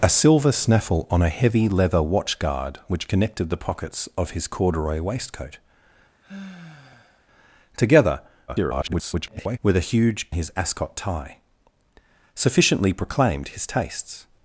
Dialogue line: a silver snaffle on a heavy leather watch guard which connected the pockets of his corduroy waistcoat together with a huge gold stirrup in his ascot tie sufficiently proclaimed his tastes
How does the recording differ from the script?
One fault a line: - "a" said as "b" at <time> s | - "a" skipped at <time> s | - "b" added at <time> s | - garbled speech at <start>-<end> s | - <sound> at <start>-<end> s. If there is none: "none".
- sigh at 6.2-7.3 s
- garbled speech at 8.5-9.6 s
- "gold stirrup in" skipped at 10.3 s